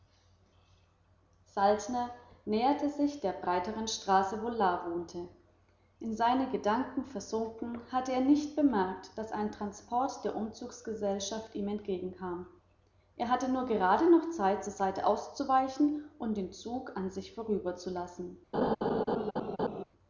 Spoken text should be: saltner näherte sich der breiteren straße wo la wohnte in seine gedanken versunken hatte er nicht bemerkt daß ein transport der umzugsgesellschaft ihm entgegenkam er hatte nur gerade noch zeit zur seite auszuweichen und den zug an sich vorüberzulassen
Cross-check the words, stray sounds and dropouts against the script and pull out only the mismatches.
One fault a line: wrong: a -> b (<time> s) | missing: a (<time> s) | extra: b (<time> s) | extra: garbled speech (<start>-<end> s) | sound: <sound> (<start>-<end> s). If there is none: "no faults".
sound: laugh (18.5-19.8 s)